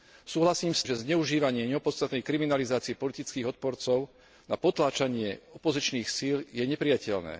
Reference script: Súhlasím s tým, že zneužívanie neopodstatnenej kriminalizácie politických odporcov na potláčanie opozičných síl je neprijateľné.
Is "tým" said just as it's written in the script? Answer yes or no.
no